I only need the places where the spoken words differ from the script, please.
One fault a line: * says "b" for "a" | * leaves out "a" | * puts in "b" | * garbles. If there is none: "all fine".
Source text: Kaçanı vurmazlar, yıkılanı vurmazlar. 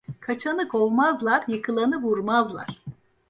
* says "kovmazlar" for "vurmazlar"